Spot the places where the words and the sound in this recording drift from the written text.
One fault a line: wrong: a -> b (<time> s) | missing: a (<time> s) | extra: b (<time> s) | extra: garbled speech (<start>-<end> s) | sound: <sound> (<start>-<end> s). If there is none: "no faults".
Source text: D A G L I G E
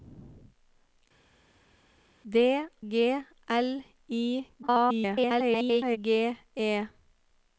missing: A (2.3 s)
extra: garbled speech (4.6-6.0 s)